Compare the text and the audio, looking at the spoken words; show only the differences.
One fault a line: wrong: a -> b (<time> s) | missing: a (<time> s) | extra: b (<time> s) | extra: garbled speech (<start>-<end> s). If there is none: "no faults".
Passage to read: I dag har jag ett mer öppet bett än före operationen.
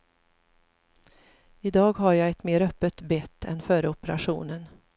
no faults